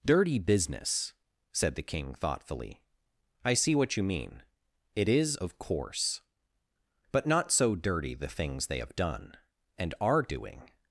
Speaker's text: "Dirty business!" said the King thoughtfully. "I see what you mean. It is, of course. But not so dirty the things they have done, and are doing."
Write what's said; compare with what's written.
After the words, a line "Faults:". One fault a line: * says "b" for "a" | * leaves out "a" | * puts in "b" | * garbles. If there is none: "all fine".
"Dirty business!" said the King thoughtfully. "I see what you mean. It is, of course. But not so dirty the things they have done, and are doing."
Faults:
all fine